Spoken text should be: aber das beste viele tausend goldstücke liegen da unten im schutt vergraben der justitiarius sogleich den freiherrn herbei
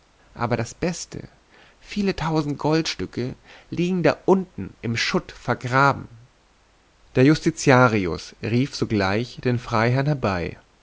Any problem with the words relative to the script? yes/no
yes